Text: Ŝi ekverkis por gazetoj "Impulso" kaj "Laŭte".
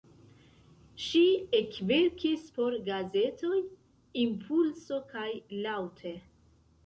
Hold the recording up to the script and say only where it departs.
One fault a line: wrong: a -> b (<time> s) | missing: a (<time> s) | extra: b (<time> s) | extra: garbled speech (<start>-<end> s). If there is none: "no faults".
no faults